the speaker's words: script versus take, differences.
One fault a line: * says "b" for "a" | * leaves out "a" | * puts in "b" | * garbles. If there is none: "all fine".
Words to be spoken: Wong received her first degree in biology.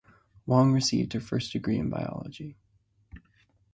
all fine